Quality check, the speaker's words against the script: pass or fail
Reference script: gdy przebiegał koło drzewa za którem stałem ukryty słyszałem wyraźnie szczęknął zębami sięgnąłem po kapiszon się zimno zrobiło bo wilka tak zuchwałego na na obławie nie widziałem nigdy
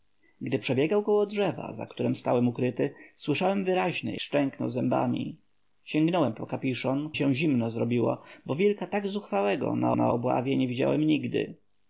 pass